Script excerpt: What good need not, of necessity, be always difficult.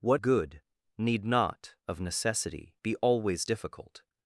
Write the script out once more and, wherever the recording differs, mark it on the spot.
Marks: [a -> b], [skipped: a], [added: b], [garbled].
What good need not, of necessity, be always difficult.